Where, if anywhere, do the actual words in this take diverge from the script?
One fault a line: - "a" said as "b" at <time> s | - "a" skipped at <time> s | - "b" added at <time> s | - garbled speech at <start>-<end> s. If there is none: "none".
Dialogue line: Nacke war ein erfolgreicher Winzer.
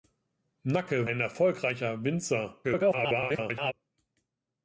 - "war" skipped at 1.1 s
- garbled speech at 2.6-3.7 s